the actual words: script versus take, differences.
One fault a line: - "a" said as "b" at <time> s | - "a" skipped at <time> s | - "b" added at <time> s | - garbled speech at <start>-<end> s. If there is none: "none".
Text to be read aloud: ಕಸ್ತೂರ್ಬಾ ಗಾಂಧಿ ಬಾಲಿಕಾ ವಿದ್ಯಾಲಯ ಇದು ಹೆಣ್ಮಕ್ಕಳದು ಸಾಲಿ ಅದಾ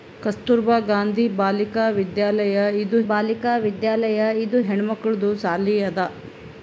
- "ಬಾಲಿಕಾ ವಿದ್ಯಾಲಯ ಇದು" added at 3.1 s